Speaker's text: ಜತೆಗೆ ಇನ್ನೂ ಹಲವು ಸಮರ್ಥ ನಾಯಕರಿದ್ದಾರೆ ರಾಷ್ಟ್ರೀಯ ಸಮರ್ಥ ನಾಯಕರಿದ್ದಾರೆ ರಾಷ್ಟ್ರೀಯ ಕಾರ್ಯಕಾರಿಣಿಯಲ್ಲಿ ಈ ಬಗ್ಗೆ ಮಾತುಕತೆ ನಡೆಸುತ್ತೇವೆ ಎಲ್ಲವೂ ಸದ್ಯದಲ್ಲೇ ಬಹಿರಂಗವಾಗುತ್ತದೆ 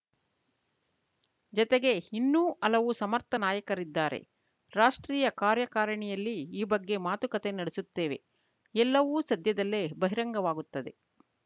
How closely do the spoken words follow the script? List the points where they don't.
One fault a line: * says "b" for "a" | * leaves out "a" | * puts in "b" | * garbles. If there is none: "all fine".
* leaves out "ಸಮರ್ಥ ನಾಯಕರಿದ್ದಾರೆ ರಾಷ್ಟ್ರೀಯ"